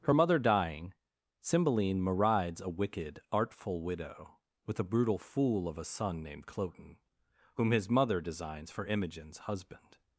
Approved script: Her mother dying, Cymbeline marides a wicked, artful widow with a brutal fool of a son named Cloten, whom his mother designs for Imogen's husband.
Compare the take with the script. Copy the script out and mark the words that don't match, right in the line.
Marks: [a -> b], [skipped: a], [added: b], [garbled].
Her mother dying, Cymbeline marides a wicked, artful widow with a brutal fool of a son named Cloten, whom his mother designs for Imogen's husband.